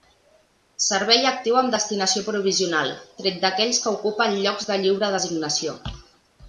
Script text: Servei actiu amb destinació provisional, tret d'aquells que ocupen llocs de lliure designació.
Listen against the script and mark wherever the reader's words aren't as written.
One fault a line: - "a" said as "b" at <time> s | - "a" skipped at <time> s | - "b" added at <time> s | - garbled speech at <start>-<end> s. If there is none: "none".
none